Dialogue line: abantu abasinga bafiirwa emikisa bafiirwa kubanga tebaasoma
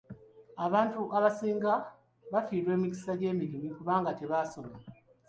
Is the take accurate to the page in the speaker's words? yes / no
no